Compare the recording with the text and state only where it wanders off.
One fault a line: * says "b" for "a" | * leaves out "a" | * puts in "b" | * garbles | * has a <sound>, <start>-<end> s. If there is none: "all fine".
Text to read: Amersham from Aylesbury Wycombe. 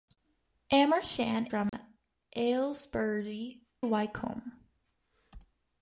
* has a dropout, 1.7-1.7 s